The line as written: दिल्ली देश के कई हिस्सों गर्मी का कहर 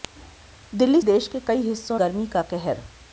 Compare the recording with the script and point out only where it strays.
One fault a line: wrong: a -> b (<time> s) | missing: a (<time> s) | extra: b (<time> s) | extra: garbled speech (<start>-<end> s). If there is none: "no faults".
no faults